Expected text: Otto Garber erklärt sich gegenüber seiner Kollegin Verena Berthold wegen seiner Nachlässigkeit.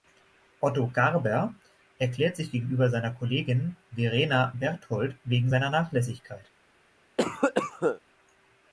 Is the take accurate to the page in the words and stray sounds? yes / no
no